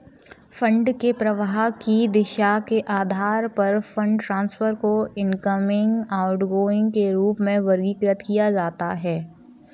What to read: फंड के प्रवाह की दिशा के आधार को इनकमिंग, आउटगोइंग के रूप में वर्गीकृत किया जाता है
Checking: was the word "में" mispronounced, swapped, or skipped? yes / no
no